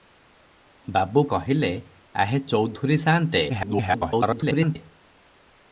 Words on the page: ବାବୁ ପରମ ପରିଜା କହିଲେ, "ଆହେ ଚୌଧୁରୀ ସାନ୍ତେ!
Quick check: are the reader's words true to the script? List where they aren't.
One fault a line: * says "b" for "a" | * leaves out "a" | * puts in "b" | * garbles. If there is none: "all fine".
* leaves out "ପରମ ପରିଜା"
* garbles